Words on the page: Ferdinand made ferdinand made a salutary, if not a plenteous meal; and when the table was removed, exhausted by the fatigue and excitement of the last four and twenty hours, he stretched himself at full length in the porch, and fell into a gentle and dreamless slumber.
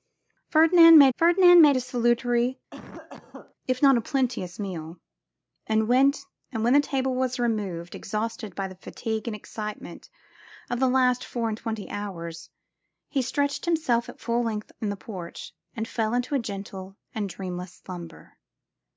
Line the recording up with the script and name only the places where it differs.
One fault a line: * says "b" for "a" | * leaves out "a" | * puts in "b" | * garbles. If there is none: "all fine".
all fine